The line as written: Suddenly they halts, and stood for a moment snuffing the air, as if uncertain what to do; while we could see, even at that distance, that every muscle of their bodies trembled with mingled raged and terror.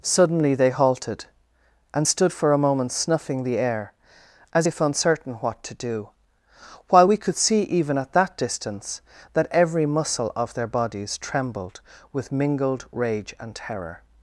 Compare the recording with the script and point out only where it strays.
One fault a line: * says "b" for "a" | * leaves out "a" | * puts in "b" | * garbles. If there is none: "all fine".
* says "halted" for "halts"
* says "rage" for "raged"